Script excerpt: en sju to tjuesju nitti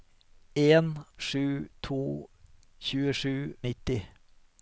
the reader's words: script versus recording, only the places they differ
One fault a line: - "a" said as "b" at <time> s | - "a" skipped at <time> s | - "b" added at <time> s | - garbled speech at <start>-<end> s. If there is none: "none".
none